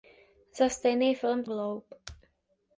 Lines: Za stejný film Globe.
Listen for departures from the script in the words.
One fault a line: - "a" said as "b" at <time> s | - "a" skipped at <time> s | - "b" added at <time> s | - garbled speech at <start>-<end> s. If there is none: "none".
none